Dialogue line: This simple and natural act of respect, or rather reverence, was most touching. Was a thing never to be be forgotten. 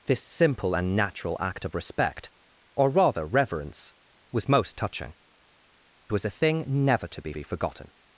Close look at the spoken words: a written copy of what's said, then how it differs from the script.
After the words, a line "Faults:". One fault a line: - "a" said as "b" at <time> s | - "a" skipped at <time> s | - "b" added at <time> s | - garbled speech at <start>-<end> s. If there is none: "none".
This simple and natural act of respect, or rather reverence, was most touching. Was a thing never to be be forgotten.
Faults:
none